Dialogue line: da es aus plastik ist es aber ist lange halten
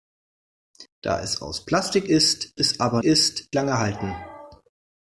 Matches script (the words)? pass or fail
pass